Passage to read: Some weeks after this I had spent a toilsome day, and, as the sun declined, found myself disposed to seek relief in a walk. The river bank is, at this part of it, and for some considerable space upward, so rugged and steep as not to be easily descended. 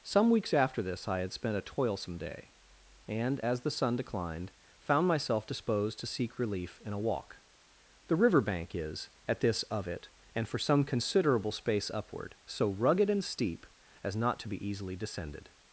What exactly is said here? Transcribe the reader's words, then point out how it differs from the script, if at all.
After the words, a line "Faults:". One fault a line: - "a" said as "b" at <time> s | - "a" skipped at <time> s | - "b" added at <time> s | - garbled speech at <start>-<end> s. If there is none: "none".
Some weeks after this I had spent a toilsome day, and, as the sun declined, found myself disposed to seek relief in a walk. The river bank is, at this of it, and for some considerable space upward, so rugged and steep as not to be easily descended.
Faults:
- "part" skipped at 9.6 s